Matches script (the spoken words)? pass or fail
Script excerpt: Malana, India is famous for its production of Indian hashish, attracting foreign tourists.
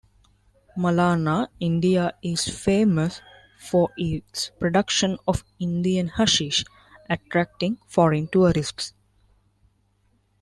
pass